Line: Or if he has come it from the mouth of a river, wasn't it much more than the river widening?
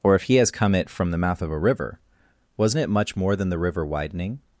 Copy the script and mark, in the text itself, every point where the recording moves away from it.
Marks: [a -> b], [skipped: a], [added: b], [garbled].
Or if he has come it from the mouth of a river, wasn't it much more than the river widening?